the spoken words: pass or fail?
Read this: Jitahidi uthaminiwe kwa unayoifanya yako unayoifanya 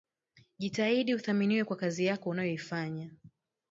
fail